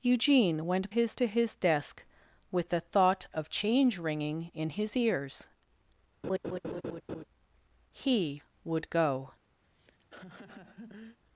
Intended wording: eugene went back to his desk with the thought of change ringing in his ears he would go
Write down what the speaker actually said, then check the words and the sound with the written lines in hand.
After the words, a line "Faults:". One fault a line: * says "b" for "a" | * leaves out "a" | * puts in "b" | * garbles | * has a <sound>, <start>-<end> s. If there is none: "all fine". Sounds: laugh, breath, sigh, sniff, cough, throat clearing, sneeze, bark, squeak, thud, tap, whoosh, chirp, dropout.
eugene went his to his desk with the thought of change ringing in his ears he would go
Faults:
* says "his" for "back"
* has a laugh, 6.2-7.2 s
* has a laugh, 9.6-11.2 s